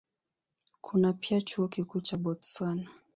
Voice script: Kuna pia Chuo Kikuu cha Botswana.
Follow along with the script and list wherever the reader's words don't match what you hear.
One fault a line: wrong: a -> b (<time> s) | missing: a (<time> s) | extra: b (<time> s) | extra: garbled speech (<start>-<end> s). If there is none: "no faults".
no faults